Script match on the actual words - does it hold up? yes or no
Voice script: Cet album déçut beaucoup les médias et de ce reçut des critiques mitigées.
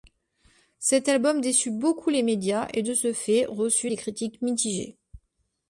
no